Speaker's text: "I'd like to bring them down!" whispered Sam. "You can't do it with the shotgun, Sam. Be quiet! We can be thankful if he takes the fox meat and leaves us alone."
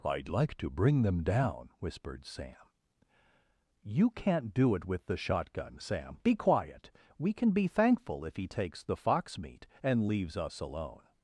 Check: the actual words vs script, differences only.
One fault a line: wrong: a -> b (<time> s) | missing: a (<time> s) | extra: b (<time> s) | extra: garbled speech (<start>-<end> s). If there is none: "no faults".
no faults